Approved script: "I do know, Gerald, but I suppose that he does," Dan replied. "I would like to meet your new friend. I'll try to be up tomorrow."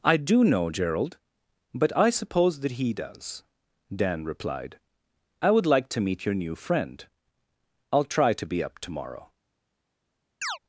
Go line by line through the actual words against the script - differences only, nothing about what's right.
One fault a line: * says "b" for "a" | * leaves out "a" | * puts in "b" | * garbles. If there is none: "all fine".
all fine